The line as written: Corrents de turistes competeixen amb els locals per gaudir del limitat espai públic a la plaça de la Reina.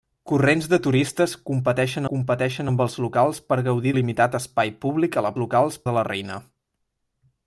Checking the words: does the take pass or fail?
fail